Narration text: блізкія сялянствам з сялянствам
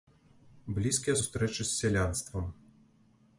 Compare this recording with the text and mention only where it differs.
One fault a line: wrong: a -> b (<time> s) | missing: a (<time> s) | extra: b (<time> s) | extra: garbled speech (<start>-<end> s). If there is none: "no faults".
wrong: сялянствам -> сустрэчы (1.2 s)